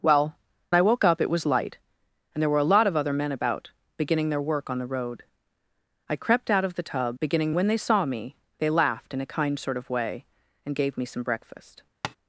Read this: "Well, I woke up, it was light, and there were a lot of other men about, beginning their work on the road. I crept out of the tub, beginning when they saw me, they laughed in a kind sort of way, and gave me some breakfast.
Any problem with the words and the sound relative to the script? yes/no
yes